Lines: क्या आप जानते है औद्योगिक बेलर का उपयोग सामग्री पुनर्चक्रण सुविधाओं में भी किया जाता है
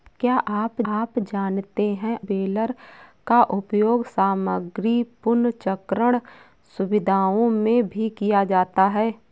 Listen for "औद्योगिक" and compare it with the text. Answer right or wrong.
wrong